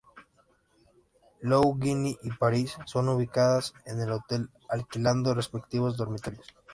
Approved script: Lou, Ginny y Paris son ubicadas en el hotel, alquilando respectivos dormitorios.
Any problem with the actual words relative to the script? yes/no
no